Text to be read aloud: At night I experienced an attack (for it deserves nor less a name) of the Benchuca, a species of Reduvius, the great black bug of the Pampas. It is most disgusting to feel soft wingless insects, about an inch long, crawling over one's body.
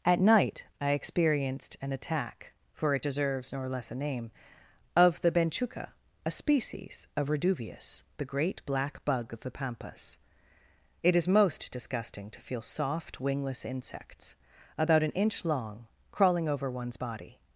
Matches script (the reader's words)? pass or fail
pass